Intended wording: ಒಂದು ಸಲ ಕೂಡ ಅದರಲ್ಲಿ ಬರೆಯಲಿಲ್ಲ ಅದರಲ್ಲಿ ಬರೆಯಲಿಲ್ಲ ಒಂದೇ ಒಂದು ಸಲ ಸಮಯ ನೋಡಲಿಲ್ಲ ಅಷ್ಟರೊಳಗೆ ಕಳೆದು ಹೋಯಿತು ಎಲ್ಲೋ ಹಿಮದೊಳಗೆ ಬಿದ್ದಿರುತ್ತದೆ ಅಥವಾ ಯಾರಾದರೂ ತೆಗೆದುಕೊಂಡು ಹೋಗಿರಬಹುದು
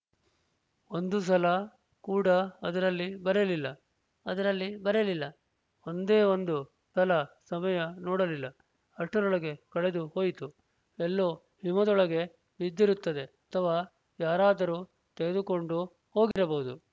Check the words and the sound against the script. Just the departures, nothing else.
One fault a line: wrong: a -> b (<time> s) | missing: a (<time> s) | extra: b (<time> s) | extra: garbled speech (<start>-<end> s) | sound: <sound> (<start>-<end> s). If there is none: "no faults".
sound: dropout (16.3-16.4 s)